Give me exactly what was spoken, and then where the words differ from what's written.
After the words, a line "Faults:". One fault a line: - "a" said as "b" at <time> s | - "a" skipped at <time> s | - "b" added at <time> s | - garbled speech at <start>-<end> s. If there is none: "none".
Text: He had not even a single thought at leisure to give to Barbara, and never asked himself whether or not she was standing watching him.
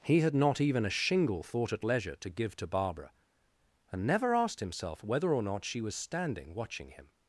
He had not even a shingle thought at leisure to give to Barbara, and never asked himself whether or not she was standing watching him.
Faults:
- "single" said as "shingle" at 0.9 s